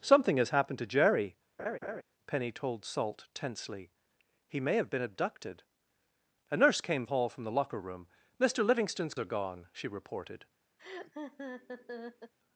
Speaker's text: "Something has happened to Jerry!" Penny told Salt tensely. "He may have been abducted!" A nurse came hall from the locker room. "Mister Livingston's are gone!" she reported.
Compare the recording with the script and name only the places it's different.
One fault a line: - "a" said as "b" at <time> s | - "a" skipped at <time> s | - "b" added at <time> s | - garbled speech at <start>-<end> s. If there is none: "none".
none